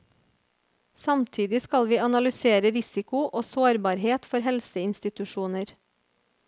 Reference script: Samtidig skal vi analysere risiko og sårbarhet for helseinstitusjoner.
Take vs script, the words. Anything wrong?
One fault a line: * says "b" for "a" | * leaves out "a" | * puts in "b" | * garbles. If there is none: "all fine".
all fine